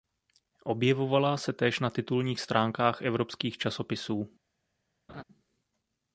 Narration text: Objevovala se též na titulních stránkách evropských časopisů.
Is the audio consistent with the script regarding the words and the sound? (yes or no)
no